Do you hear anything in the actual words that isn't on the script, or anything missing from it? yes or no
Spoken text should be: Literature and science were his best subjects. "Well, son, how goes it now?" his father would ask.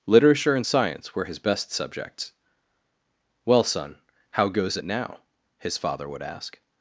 no